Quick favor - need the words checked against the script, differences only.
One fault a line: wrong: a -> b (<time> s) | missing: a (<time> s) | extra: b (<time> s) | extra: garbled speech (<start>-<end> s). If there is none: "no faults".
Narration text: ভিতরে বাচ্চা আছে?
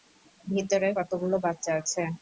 extra: কতগুলো (1.0 s)